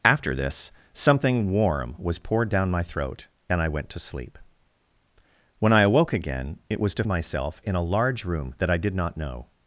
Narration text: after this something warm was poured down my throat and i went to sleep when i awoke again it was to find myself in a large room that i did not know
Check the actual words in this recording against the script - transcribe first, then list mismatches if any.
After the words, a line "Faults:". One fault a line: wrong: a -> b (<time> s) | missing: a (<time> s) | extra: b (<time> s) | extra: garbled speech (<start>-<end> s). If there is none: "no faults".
after this something warm was poured down my throat and i went to sleep when i awoke again it was to myself in a large room that i did not know
Faults:
missing: find (7.0 s)